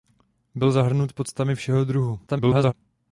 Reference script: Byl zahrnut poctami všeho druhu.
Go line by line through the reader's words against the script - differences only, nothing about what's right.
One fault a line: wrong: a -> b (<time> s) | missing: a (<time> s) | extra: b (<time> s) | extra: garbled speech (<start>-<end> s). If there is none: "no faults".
extra: garbled speech (2.3-2.7 s)